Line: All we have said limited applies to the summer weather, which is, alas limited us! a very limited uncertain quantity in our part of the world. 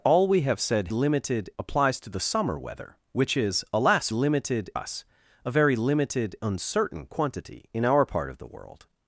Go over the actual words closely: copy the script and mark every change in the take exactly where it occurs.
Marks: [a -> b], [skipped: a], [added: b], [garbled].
All we have said limited applies to the summer weather, which is, alas limited us! a very limited uncertain quantity in our part of the world.